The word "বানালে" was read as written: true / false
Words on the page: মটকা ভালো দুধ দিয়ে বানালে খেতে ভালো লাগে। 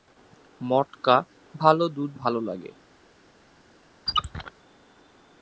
false